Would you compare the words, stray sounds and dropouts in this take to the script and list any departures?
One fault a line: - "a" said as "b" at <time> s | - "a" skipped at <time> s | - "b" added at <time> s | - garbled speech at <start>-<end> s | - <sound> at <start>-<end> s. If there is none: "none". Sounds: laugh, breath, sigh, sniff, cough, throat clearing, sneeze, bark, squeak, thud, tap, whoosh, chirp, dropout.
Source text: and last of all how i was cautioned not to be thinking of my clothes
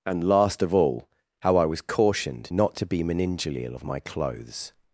- "thinking" said as "meningeal" at 3.0 s